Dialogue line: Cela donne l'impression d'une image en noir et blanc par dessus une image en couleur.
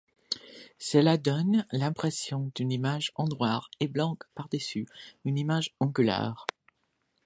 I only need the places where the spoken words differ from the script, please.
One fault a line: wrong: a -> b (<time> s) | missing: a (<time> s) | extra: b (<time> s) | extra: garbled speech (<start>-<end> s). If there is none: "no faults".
no faults